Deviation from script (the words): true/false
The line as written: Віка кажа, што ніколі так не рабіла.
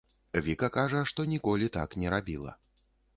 false